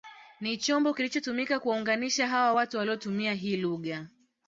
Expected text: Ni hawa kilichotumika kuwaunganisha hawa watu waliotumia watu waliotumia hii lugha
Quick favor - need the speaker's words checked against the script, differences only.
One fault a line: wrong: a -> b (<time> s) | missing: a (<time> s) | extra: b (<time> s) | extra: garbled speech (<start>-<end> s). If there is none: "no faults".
wrong: hawa -> chombo (0.6 s)
missing: watu waliotumia (3.3 s)